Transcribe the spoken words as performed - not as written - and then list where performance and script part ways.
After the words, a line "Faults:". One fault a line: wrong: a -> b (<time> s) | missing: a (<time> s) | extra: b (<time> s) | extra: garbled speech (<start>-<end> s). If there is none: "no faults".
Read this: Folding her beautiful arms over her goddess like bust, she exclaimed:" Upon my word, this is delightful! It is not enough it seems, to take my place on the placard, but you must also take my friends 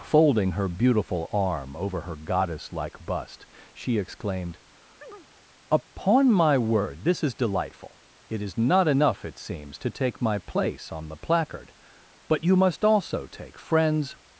Folding her beautiful arm over her goddess like bust, she exclaimed:" Upon my word, this is delightful! It is not enough it seems, to take my place on the placard, but you must also take friends
Faults:
wrong: arms -> arm (1.3 s)
missing: my (13.6 s)